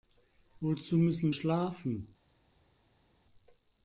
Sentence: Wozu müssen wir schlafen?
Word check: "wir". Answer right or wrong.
wrong